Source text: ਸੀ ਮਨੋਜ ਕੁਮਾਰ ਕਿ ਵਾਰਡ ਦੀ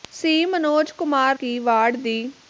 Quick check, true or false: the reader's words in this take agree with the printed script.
true